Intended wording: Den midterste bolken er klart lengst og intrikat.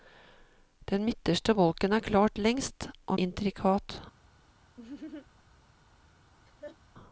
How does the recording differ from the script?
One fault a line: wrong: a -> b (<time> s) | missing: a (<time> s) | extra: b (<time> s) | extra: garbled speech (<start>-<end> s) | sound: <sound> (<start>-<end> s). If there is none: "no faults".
sound: laugh (4.8-5.3 s)
sound: laugh (6.4-6.8 s)